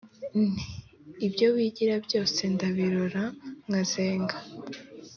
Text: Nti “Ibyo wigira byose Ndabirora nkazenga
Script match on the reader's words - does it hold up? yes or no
yes